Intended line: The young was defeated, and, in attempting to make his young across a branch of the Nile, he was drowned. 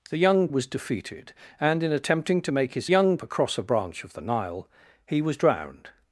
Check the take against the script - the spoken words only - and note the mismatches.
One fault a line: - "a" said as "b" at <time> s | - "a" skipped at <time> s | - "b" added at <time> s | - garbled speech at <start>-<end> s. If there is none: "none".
none